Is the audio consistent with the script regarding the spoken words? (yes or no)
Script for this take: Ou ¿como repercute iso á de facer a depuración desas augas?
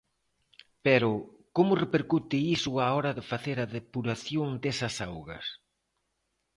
no